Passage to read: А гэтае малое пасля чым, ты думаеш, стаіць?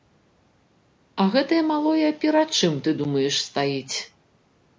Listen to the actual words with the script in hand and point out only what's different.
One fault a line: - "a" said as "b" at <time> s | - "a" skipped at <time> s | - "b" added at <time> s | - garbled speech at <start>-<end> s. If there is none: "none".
- "пасля" said as "перад" at 2.2 s